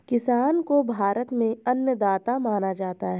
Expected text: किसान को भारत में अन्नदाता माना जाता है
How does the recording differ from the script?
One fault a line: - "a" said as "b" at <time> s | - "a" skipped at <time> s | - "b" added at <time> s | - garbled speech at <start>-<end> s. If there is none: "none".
none